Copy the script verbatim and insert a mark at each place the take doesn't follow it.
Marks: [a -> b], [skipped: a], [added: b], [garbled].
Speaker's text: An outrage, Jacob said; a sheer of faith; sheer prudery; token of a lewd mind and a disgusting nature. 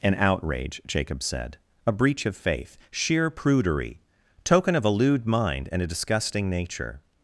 An outrage, Jacob said; a [sheer -> breach] of faith; sheer prudery; token of a lewd mind and a disgusting nature.